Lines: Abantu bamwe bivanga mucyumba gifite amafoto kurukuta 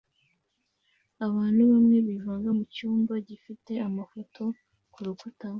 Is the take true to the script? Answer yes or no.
yes